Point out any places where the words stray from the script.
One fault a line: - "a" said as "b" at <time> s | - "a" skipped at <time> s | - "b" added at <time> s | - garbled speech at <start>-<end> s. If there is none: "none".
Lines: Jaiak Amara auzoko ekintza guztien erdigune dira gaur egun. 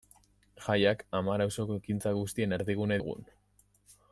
- "dira gaur" skipped at 3.0 s